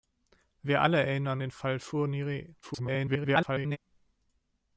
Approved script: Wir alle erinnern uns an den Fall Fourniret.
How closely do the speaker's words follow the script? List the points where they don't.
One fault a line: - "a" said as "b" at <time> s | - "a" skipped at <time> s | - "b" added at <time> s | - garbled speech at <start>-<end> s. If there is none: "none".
- "uns an" skipped at 1.4 s
- garbled speech at 2.6-3.8 s